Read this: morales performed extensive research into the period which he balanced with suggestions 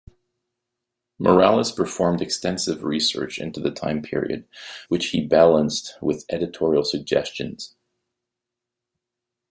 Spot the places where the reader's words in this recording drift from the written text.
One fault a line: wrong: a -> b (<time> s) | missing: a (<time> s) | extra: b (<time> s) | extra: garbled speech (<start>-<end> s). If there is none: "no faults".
extra: time (3.7 s)
extra: editorial (6.3 s)